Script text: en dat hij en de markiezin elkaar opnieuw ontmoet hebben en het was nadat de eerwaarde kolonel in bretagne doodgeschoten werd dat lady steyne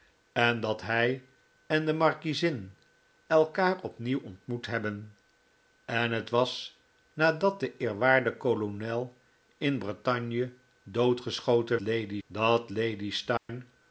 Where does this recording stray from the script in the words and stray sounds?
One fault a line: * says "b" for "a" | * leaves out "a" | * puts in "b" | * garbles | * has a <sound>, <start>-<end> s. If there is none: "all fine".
* says "lady" for "werd"
* has a dropout, 13.4-13.5 s